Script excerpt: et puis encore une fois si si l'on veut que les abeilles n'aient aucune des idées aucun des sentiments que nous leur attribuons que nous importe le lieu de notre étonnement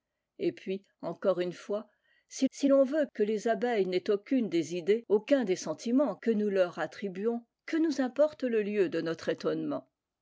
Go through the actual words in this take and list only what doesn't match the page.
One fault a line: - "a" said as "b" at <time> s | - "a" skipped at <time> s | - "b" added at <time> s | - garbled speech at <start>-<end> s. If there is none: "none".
none